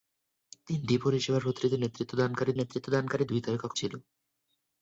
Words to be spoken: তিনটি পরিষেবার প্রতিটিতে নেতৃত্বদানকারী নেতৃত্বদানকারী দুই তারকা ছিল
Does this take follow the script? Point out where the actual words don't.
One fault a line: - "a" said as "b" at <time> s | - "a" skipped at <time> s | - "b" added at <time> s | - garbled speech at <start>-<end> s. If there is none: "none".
none